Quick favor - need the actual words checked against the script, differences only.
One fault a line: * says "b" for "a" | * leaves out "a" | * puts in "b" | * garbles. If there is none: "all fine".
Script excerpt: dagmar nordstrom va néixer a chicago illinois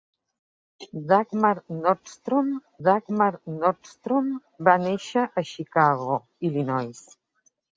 * puts in "dagmar nordstrom"